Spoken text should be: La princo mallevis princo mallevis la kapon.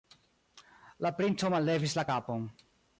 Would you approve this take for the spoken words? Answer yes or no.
no